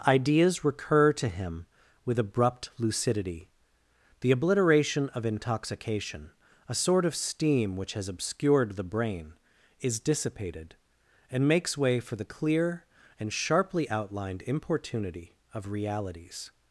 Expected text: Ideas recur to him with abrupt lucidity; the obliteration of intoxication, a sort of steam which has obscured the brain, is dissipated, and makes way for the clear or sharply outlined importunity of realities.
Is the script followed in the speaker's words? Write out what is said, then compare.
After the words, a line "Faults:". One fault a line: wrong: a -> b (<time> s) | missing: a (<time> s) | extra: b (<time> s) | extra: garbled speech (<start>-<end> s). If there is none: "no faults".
Ideas recur to him with abrupt lucidity; the obliteration of intoxication, a sort of steam which has obscured the brain, is dissipated, and makes way for the clear and sharply outlined importunity of realities.
Faults:
wrong: or -> and (13.2 s)